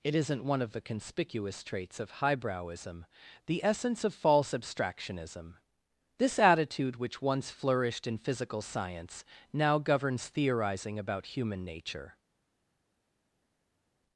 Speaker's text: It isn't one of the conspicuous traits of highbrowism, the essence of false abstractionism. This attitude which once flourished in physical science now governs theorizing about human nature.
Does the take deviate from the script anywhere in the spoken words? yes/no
no